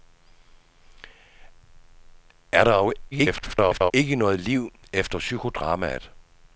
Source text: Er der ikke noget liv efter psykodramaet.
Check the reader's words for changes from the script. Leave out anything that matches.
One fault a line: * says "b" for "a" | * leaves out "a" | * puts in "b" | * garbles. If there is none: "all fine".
* garbles